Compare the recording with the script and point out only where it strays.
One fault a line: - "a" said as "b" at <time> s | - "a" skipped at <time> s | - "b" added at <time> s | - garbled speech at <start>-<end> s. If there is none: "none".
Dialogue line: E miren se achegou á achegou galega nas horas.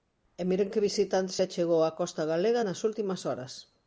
- "que visitante" added at 0.7 s
- "achegou" said as "costa" at 2.0 s
- "últimas" added at 2.9 s